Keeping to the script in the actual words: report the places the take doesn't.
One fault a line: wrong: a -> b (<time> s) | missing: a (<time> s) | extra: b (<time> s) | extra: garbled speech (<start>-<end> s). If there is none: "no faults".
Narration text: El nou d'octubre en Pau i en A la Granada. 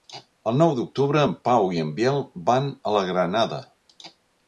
extra: Biel van (2.0 s)